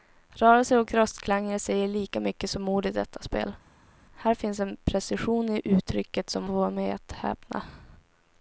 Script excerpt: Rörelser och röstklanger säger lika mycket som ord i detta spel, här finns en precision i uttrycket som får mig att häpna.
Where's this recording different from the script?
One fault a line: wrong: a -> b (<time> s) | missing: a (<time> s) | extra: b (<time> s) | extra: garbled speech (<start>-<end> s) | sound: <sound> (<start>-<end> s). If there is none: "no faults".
no faults